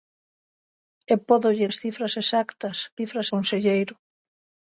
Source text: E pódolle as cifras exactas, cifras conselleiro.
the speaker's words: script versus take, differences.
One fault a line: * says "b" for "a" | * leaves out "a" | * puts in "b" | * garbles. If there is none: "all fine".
all fine